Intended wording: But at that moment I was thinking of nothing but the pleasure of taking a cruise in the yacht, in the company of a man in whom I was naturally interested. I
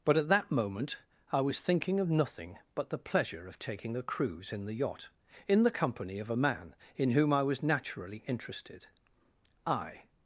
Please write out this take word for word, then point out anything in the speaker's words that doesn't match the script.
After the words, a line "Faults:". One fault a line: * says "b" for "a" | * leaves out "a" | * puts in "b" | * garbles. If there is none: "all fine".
But at that moment I was thinking of nothing but the pleasure of taking a cruise in the yacht, in the company of a man in whom I was naturally interested. I
Faults:
all fine